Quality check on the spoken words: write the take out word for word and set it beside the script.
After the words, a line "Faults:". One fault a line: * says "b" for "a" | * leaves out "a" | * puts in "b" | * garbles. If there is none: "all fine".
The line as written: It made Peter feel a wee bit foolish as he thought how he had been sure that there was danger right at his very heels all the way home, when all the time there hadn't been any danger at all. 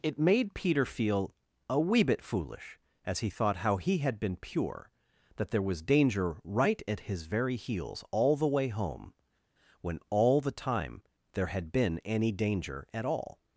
It made Peter feel a wee bit foolish as he thought how he had been pure that there was danger right at his very heels all the way home, when all the time there had been any danger at all.
Faults:
* says "pure" for "sure"
* says "had" for "hadn't"